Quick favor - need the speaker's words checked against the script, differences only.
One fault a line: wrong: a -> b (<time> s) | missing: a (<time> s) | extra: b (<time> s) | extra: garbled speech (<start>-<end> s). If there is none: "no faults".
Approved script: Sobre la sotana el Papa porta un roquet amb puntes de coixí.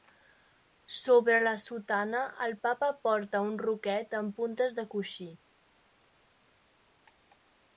no faults